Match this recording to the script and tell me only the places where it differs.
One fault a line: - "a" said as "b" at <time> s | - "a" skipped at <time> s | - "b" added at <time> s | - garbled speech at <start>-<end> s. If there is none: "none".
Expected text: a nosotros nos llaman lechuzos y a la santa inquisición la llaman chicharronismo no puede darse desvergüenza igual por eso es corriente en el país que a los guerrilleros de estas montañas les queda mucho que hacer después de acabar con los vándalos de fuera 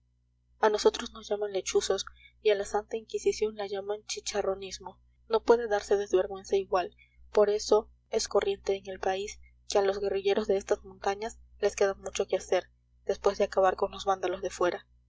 none